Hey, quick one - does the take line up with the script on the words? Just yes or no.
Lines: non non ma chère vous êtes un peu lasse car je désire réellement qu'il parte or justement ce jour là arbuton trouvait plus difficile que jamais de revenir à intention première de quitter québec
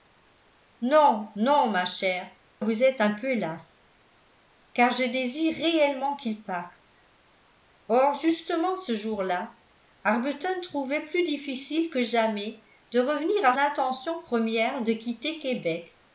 yes